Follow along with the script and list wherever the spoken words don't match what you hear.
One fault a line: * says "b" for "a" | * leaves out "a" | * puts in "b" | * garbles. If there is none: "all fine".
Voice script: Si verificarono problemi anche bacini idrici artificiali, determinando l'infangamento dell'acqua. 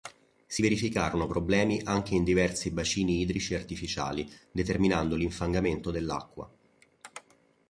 * puts in "in diversi"